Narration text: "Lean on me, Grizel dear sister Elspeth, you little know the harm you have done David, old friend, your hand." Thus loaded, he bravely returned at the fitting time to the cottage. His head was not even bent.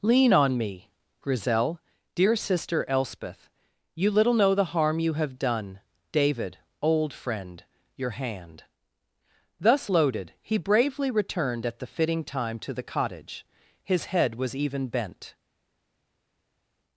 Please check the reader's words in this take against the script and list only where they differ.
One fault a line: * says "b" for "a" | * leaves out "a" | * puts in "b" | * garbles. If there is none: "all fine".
* leaves out "not"